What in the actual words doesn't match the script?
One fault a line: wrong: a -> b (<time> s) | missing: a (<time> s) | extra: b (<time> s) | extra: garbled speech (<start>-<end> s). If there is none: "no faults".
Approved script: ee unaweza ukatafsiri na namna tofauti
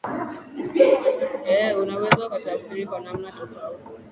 wrong: na -> kwa (2.8 s)